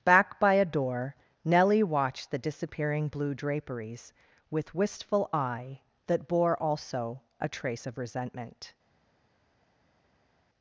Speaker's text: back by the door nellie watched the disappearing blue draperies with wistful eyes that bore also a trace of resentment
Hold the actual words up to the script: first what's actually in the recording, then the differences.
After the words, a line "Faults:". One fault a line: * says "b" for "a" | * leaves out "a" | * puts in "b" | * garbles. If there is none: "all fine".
back by a door nellie watched the disappearing blue draperies with wistful eye that bore also a trace of resentment
Faults:
* says "a" for "the"
* says "eye" for "eyes"